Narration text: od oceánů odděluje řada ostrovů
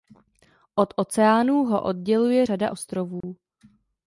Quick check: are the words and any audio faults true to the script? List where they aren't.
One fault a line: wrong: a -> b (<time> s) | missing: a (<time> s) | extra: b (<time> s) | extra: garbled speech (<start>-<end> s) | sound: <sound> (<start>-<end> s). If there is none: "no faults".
extra: ho (1.6 s)
sound: dropout (3.2-3.2 s)